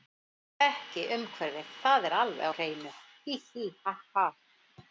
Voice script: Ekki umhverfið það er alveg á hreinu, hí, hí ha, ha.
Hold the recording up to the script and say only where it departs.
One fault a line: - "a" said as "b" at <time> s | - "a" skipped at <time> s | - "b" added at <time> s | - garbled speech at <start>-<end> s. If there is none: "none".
none